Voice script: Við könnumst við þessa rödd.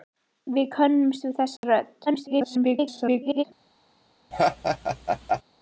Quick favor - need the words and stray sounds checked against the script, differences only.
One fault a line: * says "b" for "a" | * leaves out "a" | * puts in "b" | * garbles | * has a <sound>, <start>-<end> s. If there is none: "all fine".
* has a dropout, 1.6-1.6 s
* garbles
* has a laugh, 4.3-5.4 s